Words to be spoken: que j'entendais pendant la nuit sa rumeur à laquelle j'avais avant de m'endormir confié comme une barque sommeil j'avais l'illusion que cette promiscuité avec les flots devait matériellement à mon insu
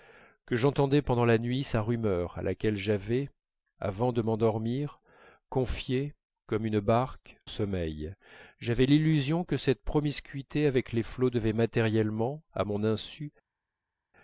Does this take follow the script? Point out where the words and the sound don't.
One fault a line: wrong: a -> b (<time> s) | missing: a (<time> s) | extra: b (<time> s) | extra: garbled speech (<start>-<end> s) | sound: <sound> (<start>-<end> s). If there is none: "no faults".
no faults